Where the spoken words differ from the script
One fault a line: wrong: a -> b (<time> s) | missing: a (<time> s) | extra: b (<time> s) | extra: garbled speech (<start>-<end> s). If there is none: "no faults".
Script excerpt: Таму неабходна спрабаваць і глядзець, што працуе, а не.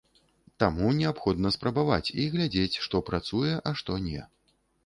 extra: што (3.8 s)